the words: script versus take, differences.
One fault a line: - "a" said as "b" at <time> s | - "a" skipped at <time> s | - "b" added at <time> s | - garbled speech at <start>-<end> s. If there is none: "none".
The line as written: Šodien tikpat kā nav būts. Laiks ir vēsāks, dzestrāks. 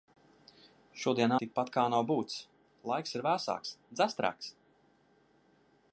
none